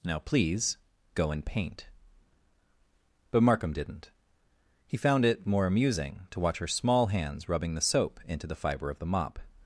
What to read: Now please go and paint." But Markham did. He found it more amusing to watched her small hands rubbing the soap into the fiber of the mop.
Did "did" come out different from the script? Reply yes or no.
yes